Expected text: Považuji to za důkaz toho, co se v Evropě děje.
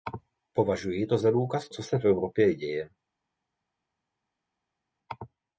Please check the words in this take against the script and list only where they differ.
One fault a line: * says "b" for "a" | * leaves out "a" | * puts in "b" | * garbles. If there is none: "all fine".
* leaves out "toho"